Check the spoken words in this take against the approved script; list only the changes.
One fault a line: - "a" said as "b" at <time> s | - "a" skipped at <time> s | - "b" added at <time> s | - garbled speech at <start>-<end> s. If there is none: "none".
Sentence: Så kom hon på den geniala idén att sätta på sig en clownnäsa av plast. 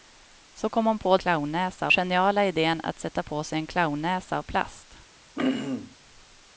- "den" said as "clownnäsa" at 1.2 s